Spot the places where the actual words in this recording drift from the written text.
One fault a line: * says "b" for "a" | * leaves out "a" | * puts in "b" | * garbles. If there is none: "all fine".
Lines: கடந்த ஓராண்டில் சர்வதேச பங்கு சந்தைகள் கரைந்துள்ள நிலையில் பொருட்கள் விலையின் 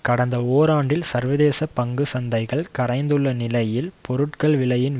all fine